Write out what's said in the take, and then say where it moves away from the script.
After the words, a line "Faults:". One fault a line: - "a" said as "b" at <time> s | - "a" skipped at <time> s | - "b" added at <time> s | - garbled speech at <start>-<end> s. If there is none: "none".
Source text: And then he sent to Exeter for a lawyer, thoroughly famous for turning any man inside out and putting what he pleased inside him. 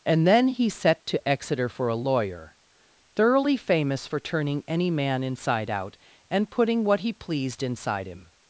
And then he set to Exeter for a lawyer, thoroughly famous for turning any man inside out and putting what he pleased inside him.
Faults:
- "sent" said as "set" at 0.7 s